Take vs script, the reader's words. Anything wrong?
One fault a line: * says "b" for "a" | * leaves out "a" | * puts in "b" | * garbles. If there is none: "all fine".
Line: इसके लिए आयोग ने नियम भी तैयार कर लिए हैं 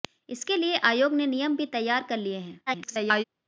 * garbles